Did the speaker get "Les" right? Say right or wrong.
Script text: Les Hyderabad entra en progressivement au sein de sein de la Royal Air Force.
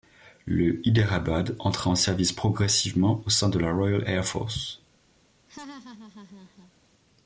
wrong